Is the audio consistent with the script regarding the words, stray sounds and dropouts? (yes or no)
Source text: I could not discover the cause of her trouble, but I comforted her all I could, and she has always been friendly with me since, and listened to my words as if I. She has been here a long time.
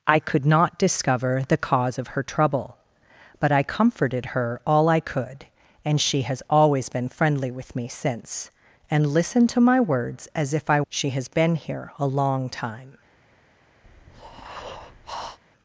no